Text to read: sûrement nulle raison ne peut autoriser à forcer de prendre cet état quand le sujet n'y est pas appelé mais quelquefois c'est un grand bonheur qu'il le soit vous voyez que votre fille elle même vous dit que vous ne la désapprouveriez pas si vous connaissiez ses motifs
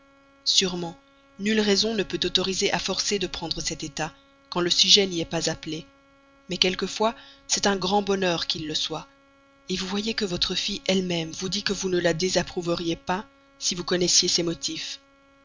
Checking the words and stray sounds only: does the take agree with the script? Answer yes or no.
yes